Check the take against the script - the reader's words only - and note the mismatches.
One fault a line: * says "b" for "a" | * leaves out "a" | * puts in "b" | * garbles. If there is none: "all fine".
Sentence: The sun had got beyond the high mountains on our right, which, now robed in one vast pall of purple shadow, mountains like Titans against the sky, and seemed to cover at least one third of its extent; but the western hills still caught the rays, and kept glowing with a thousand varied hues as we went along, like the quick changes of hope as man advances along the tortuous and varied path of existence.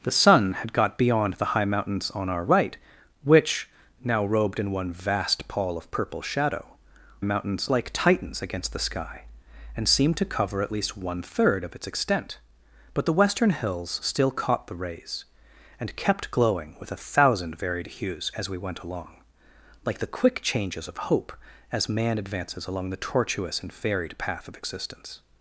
all fine